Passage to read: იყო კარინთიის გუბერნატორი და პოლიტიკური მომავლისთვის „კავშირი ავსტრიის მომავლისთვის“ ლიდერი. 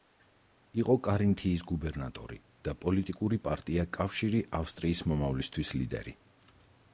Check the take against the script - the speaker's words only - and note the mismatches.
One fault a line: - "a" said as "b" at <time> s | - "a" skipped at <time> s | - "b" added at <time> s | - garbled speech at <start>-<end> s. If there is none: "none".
- "მომავლისთვის" said as "პარტია" at 3.5 s